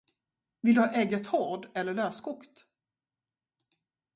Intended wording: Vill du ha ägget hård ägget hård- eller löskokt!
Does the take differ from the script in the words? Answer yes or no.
yes